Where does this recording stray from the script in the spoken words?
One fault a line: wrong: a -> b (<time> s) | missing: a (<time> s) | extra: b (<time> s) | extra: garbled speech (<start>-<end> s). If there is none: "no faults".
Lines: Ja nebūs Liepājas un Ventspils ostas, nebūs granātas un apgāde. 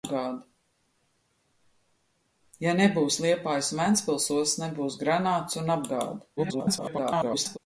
extra: garbled speech (6.4-7.6 s)